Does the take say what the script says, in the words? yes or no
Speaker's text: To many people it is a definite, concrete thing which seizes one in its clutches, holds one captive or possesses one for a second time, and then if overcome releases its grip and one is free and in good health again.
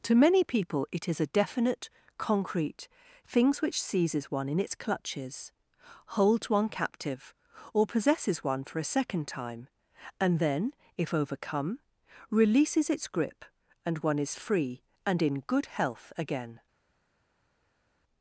no